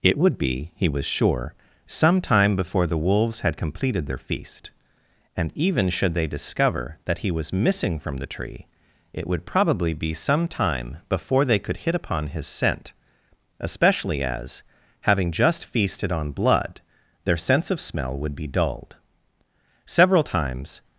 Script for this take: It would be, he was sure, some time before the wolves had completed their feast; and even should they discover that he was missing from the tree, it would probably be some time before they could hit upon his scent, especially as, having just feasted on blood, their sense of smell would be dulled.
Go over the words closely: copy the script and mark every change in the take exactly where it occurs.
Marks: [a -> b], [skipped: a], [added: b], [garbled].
It would be, he was sure, some time before the wolves had completed their feast; and even should they discover that he was missing from the tree, it would probably be some time before they could hit upon his scent, especially as, having just feasted on blood, their sense of smell would be dulled. [added: Several times]